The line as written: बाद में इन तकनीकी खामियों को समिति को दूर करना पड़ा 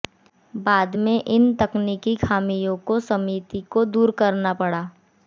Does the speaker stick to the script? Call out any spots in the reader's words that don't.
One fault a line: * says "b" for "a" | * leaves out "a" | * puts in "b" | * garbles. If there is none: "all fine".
all fine